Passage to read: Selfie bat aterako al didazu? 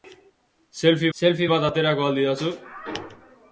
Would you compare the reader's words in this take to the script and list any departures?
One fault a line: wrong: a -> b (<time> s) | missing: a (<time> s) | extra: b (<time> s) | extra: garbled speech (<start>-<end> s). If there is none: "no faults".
extra: selfie (1.2 s)